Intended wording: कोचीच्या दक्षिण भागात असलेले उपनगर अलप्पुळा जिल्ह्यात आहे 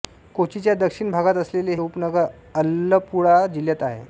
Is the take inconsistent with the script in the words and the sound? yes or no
no